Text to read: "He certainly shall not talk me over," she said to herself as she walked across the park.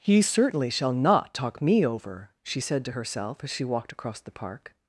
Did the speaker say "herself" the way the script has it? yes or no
yes